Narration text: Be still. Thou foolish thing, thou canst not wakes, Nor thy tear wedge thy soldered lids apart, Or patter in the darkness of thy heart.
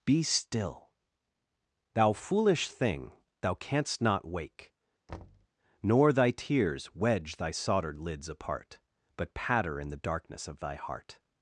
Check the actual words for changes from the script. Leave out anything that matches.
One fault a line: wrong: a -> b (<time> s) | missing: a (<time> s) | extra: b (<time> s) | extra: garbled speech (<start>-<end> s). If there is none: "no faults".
wrong: wakes -> wake (4.3 s)
wrong: tear -> tears (6.3 s)
wrong: Or -> But (9.2 s)